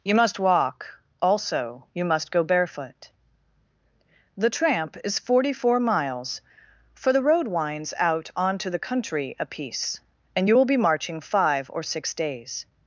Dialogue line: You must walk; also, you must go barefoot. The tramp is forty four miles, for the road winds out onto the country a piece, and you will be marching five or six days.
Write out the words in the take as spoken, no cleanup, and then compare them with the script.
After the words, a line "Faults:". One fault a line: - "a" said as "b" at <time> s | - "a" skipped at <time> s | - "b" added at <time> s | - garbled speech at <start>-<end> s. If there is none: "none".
You must walk; also, you must go barefoot. The tramp is forty four miles, for the road winds out onto the country a piece, and you will be marching five or six days.
Faults:
none